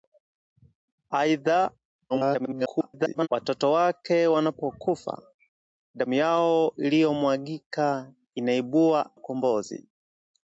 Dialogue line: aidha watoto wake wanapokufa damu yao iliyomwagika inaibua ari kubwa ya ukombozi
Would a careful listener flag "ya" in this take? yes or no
yes